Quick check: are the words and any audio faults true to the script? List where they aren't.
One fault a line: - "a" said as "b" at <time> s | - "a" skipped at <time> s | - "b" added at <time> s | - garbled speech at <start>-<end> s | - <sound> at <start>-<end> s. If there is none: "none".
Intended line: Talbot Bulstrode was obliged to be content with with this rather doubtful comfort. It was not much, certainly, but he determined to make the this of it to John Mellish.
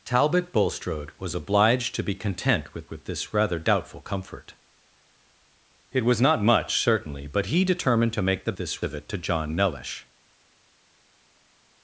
none